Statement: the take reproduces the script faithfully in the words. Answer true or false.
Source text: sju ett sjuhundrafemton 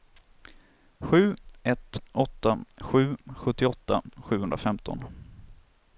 false